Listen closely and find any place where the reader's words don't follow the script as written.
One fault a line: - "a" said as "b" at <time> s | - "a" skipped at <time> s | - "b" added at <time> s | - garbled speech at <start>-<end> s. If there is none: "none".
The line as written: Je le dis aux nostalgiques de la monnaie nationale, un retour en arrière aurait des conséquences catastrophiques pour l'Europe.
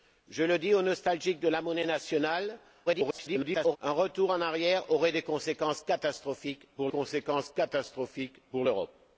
- garbled speech at 2.9-3.8 s
- "conséquences catastrophiques pour" added at 6.9 s